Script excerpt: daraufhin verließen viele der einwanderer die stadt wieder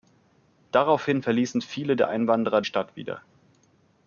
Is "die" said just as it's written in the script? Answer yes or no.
no